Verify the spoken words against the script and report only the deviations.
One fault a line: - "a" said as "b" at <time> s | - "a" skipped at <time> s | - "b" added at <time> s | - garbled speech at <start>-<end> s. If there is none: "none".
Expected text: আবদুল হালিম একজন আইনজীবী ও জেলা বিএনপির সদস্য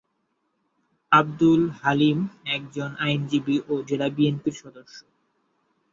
none